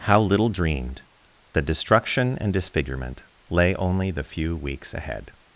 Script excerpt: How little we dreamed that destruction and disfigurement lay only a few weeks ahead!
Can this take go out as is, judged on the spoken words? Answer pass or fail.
fail